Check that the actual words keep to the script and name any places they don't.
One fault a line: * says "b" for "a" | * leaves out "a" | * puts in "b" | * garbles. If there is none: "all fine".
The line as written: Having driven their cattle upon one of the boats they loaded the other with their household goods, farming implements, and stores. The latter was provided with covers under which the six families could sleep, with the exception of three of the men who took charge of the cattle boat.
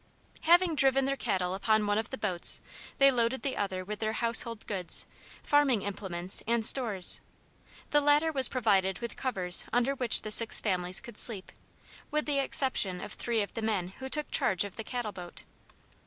all fine